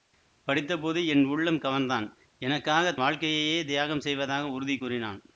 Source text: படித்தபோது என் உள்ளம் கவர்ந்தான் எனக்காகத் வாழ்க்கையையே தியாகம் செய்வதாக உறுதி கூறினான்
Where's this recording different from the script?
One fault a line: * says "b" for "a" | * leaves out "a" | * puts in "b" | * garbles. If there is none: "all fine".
all fine